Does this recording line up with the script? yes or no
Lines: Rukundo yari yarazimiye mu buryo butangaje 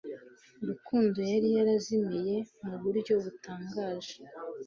yes